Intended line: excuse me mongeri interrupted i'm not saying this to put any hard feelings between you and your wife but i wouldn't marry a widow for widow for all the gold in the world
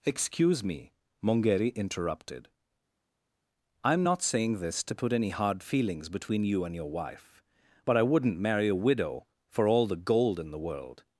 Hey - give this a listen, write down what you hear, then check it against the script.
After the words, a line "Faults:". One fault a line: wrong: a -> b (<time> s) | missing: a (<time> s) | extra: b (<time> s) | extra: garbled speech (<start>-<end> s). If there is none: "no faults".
excuse me mongeri interrupted i'm not saying this to put any hard feelings between you and your wife but i wouldn't marry a widow for all the gold in the world
Faults:
missing: widow for (9.7 s)